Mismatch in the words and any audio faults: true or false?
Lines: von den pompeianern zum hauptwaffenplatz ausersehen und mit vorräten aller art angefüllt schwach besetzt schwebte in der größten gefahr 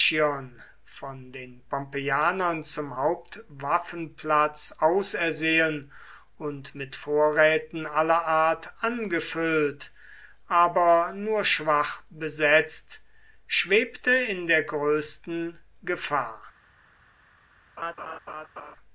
true